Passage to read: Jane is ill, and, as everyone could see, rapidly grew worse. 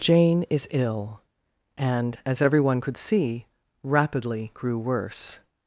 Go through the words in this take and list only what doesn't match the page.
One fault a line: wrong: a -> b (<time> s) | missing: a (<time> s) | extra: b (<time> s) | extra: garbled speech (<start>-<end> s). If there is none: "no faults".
no faults